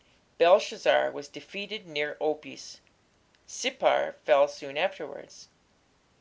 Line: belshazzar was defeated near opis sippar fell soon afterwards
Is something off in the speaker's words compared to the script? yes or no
no